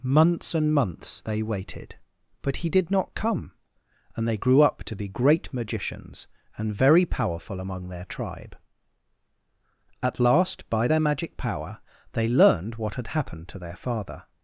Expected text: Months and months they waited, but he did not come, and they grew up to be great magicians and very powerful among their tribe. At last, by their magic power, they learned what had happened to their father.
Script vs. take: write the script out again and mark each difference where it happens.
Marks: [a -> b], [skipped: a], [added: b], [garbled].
Months and months they waited, but he did not come, and they grew up to be great magicians and very powerful among their tribe. At last, by their magic power, they learned what had happened to their father.